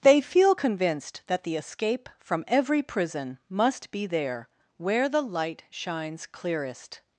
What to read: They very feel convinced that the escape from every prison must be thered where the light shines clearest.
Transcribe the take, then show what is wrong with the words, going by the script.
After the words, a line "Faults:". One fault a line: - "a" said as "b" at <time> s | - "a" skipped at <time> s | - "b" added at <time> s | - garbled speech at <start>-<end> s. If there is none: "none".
They feel convinced that the escape from every prison must be there where the light shines clearest.
Faults:
- "very" skipped at 0.2 s
- "thered" said as "there" at 4.1 s